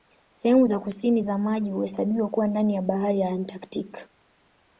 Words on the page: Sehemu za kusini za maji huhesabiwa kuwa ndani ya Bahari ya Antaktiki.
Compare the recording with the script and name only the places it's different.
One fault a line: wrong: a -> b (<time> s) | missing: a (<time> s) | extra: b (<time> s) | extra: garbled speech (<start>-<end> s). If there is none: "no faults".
no faults